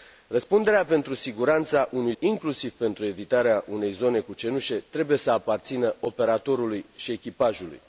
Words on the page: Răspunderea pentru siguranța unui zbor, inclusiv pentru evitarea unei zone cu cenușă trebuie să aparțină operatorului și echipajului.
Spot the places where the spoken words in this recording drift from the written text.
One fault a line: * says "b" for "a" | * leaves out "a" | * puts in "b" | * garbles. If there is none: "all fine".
* leaves out "zbor"